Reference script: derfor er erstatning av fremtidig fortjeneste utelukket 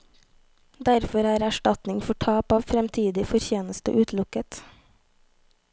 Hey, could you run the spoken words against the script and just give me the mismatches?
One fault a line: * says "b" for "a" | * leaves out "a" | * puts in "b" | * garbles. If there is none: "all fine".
* puts in "for tap"